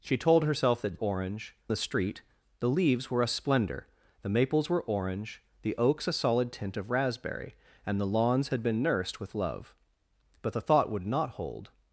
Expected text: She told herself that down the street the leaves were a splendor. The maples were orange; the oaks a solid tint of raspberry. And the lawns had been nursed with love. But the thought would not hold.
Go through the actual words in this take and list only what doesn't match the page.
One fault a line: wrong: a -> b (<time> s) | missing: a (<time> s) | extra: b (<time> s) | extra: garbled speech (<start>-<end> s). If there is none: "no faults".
wrong: down -> orange (1.0 s)